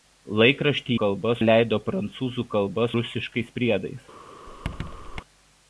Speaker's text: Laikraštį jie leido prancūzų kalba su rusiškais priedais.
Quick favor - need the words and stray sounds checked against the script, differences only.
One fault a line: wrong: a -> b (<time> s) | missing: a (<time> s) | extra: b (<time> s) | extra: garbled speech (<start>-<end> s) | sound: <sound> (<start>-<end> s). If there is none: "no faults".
wrong: jie -> kalba (1.0 s)
missing: su (2.9 s)
sound: squeak (4.5-5.2 s)